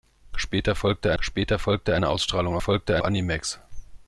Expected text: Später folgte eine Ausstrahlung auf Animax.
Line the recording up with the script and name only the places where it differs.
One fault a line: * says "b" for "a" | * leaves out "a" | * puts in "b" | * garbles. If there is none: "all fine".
* puts in "später folgte"
* says "folgte" for "auf"